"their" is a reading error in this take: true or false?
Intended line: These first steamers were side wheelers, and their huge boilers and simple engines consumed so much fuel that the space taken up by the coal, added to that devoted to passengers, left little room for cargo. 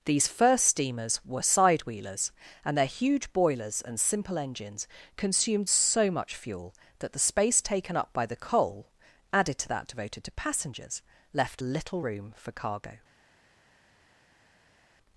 false